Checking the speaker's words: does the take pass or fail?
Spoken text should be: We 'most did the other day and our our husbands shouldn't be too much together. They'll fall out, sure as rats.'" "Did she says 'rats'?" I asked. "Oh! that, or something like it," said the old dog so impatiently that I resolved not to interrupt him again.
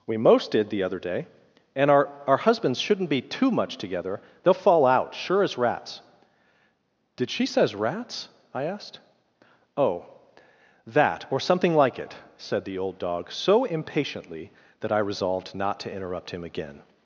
pass